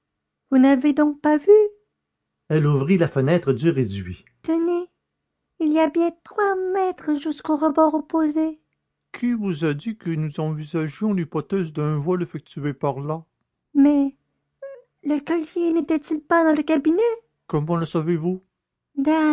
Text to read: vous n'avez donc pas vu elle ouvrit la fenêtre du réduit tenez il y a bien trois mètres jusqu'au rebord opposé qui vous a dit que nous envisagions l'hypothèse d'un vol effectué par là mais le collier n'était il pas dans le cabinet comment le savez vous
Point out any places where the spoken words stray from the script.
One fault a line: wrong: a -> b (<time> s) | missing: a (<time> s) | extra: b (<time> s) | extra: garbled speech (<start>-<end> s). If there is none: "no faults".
no faults